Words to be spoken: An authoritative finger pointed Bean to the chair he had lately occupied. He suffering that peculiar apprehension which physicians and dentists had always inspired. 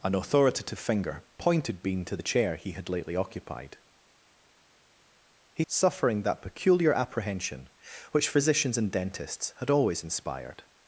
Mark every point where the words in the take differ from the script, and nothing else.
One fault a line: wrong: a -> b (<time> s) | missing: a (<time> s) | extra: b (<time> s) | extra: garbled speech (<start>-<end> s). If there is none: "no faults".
no faults